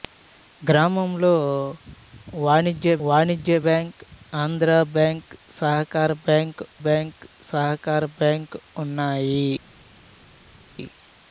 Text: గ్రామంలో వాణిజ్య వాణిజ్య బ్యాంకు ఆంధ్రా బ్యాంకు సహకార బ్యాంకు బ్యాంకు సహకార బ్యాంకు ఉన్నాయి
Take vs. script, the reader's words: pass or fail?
pass